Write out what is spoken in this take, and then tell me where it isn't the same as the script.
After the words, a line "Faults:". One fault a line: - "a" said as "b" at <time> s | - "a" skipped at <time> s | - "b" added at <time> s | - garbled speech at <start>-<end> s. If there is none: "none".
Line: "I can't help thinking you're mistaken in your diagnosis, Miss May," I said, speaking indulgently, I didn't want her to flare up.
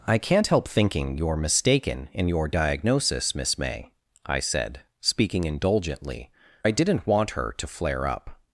"I can't help thinking you're mistaken in your diagnosis, Miss May," I said, speaking indulgently, I didn't want her to flare up.
Faults:
none